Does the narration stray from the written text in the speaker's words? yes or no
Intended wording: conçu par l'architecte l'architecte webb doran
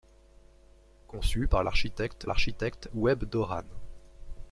no